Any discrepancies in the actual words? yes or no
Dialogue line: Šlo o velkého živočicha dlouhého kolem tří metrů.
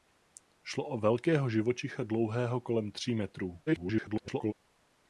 yes